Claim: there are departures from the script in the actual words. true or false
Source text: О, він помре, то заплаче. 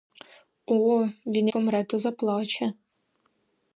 false